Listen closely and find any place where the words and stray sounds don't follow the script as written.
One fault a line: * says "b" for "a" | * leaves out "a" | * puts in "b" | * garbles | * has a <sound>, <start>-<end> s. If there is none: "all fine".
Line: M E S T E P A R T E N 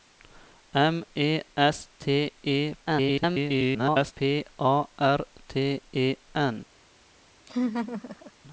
* garbles
* has a laugh, 7.5-8.3 s